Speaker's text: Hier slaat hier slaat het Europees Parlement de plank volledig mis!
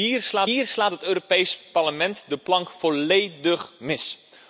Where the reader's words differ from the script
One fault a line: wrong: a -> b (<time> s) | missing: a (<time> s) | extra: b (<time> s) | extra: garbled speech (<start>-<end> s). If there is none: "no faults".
no faults